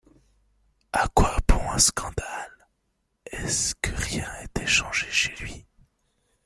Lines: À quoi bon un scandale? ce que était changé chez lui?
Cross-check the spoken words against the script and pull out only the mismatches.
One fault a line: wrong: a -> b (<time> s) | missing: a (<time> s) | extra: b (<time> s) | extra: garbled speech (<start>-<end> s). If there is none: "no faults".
extra: est (3.3 s)
extra: rien (4.0 s)